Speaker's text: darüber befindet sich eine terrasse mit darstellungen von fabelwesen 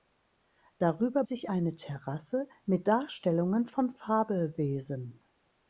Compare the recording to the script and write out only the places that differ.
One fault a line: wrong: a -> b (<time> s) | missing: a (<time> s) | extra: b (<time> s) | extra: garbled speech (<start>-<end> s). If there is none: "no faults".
missing: befindet (1.2 s)